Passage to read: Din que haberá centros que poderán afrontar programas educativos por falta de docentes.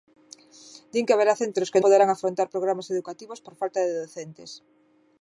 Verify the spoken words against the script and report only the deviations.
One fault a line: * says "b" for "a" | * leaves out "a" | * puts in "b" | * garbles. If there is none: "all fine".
all fine